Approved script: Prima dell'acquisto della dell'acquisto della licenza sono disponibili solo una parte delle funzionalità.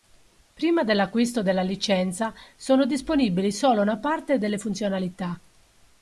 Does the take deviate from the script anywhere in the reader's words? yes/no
yes